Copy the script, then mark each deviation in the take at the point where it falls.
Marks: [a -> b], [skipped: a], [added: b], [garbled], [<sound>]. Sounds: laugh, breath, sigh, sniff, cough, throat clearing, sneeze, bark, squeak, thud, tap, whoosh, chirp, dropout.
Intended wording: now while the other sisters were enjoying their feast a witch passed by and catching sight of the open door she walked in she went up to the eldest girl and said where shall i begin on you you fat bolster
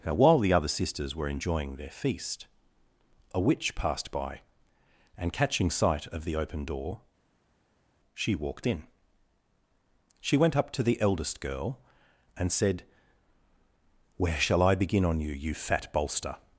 now while the other sisters were enjoying their feast a witch passed by and catching sight of the open door she walked in she went up to the eldest girl and said where shall i begin on you you fat bolster